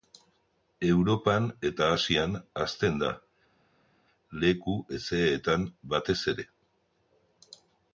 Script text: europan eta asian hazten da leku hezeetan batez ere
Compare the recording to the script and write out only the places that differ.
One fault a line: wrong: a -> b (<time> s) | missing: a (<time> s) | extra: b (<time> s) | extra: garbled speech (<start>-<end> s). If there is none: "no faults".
no faults